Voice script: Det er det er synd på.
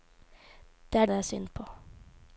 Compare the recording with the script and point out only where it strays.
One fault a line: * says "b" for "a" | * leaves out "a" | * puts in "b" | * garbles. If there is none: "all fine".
all fine